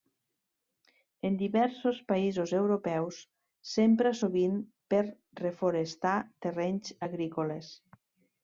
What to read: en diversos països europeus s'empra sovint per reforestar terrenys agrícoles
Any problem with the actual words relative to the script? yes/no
no